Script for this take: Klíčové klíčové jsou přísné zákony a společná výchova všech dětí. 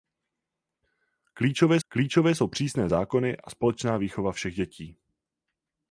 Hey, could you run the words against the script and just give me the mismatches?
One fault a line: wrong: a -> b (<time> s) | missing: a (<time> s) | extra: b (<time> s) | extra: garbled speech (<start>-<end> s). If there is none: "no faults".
no faults